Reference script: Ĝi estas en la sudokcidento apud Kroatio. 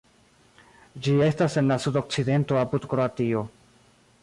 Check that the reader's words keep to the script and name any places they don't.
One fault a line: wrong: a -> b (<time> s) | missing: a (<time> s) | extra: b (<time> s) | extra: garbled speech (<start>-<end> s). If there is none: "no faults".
no faults